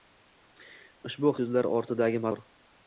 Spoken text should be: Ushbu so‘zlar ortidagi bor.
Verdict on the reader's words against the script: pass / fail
pass